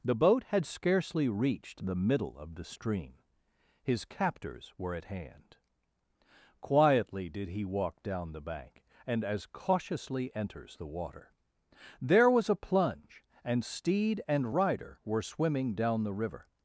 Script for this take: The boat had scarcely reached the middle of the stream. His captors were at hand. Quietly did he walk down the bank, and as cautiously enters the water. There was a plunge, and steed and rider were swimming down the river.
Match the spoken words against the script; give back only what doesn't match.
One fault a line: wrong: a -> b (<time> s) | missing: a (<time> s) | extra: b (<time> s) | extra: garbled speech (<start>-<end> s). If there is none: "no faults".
no faults